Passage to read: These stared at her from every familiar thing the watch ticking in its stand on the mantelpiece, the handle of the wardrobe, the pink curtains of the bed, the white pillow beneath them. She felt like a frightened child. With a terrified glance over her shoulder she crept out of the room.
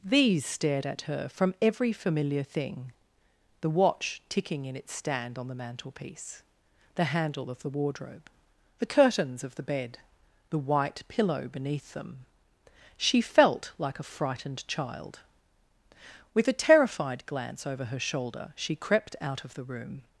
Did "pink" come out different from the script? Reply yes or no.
yes